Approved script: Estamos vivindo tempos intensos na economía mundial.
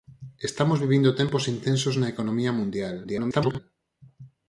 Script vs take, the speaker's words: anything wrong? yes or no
yes